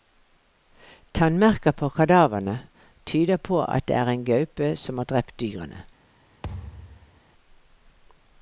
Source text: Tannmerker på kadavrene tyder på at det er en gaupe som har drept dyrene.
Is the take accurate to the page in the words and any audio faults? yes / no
no